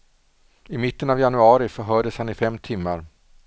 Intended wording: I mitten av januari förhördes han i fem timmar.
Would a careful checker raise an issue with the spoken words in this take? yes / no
no